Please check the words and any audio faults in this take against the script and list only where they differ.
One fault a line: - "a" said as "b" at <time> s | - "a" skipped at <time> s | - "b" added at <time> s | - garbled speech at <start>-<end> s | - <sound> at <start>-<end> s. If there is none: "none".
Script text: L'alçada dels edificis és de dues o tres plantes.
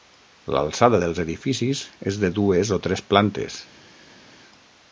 none